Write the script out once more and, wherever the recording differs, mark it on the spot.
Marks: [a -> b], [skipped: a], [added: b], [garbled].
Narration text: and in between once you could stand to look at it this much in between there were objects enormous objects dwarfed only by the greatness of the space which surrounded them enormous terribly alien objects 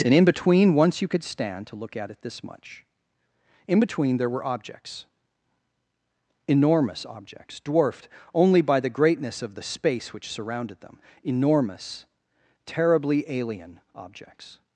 and in between once you could stand to look at it this much in between there were objects enormous objects dwarfed only by the greatness of the space which surrounded them enormous terribly alien objects